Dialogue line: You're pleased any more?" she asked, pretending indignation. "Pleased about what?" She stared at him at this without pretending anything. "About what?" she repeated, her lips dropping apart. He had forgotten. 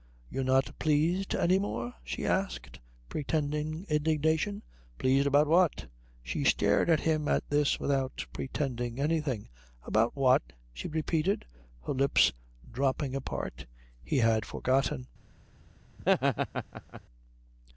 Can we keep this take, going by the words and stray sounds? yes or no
no